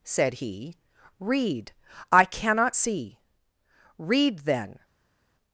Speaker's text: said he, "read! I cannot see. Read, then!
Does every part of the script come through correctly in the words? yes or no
yes